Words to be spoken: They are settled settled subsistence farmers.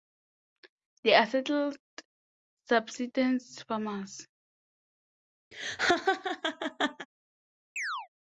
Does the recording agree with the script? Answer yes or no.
no